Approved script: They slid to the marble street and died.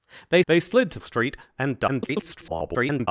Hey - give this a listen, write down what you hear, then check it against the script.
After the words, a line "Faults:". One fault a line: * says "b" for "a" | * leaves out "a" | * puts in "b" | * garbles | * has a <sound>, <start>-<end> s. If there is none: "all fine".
They they slid to street and died. [garbled]
Faults:
* puts in "they"
* leaves out "the marble"
* garbles